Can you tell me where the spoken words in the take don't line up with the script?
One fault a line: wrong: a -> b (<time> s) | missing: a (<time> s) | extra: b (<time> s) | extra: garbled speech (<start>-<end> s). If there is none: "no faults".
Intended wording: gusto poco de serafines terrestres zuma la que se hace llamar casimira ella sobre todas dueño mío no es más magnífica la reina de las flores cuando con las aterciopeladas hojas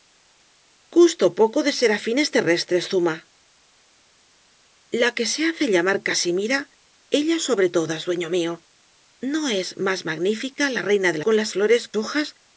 missing: las flores cuando (11.2 s)
wrong: aterciopeladas -> flores (11.5 s)